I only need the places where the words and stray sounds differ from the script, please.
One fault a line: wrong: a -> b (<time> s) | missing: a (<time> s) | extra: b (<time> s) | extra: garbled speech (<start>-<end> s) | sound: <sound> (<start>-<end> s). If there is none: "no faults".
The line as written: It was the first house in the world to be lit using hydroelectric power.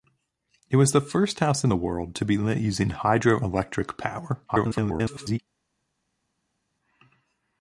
extra: garbled speech (4.5-5.4 s)